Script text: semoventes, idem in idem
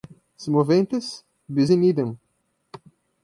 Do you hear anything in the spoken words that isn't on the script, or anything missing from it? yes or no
yes